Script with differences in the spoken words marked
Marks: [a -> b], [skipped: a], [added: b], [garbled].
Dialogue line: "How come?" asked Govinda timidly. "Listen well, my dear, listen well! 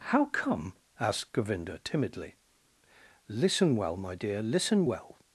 "How come?" asked Govinda timidly. "Listen well, my dear, listen well!